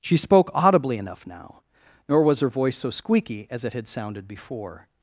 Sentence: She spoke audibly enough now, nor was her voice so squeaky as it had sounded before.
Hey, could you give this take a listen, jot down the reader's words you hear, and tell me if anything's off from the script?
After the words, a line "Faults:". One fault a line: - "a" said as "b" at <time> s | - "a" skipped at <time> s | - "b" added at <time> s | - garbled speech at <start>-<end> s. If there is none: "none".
She spoke audibly enough now, nor was her voice so squeaky as it had sounded before.
Faults:
none